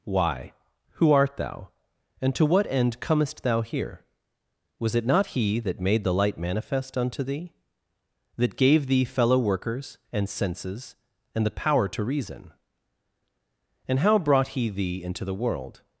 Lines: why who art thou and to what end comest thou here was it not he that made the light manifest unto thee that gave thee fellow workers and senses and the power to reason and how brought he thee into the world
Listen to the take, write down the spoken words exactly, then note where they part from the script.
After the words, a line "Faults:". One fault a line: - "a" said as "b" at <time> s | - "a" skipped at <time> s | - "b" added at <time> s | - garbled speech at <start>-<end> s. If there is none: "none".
why who art thou and to what end comest thou here was it not he that made the light manifest unto thee that gave thee fellow workers and senses and the power to reason and how brought he thee into the world
Faults:
none